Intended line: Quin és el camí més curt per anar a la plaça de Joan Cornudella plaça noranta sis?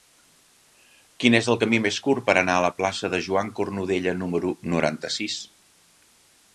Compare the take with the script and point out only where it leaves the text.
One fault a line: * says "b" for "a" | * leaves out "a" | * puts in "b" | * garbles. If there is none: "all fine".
* says "número" for "plaça"